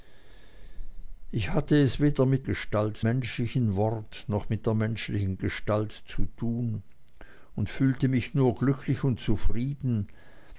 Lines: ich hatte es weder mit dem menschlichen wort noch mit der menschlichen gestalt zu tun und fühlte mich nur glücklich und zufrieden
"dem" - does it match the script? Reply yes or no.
no